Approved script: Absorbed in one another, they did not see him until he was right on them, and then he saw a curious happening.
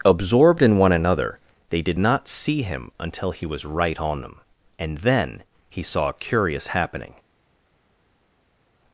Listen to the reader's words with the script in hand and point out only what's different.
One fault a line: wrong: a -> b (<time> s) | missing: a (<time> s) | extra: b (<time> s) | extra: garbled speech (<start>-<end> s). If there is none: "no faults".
no faults